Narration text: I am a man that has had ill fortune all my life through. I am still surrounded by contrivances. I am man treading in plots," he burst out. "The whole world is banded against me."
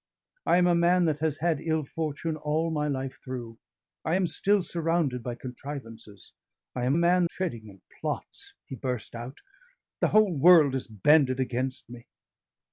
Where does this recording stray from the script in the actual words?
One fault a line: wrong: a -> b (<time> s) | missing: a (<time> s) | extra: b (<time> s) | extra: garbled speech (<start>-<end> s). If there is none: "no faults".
no faults